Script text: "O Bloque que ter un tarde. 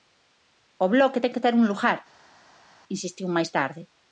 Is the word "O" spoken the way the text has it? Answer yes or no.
yes